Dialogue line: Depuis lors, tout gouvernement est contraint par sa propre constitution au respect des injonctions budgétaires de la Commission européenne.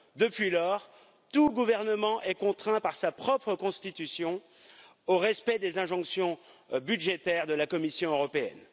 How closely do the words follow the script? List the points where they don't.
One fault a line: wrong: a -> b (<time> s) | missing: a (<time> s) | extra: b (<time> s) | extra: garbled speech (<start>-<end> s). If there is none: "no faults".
no faults